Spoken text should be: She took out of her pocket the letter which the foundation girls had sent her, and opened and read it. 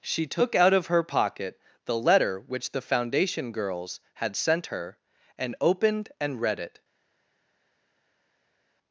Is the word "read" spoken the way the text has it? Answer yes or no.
yes